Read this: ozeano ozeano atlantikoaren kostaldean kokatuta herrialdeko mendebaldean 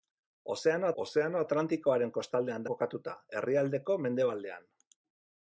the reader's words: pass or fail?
pass